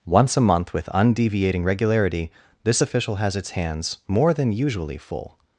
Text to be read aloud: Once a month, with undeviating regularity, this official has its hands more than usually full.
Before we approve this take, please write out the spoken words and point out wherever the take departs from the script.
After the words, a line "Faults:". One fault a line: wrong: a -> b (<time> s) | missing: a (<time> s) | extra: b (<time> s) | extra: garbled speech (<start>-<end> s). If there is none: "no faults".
Once a month, with undeviating regularity, this official has its hands more than usually full.
Faults:
no faults